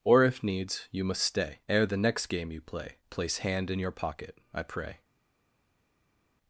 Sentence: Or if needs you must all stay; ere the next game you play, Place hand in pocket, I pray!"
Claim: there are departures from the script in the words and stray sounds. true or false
true